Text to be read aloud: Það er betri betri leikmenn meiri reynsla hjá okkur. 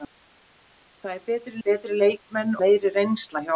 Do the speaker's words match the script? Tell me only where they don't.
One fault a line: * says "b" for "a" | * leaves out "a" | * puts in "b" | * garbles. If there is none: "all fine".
all fine